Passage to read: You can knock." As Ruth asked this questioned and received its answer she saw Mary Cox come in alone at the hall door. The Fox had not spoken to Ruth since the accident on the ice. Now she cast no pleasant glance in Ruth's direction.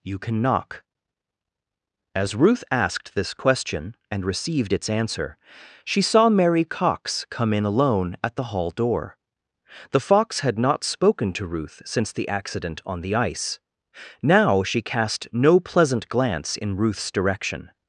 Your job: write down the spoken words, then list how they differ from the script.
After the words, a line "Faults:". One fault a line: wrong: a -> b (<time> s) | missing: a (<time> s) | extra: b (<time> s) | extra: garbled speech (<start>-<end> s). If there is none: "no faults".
You can knock." As Ruth asked this question and received its answer she saw Mary Cox come in alone at the hall door. The Fox had not spoken to Ruth since the accident on the ice. Now she cast no pleasant glance in Ruth's direction.
Faults:
wrong: questioned -> question (3.3 s)